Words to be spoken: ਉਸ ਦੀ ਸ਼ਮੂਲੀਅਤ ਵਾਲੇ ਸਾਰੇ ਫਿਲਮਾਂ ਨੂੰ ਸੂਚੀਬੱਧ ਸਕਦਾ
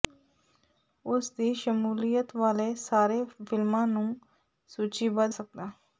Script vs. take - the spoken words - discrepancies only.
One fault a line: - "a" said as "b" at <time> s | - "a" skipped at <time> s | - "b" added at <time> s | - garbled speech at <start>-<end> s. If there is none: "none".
none